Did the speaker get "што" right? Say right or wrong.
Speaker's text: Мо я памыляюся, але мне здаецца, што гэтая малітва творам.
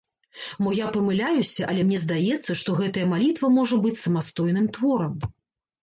right